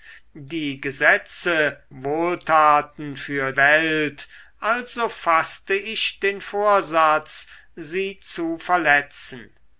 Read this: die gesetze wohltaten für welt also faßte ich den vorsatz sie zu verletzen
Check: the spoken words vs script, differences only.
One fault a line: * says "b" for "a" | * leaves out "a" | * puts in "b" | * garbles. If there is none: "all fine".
all fine